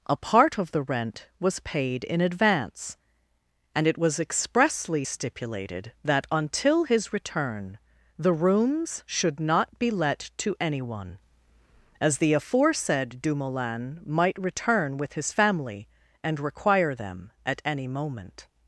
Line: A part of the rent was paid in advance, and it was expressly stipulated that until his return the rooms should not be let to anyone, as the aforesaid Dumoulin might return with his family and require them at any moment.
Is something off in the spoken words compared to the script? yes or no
no